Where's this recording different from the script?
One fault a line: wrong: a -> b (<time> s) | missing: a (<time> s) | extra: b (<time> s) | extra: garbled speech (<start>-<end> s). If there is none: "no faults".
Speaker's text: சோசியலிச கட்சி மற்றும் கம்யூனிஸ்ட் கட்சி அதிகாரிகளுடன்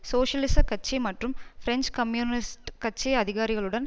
extra: பிரெஞ்சு (1.6 s)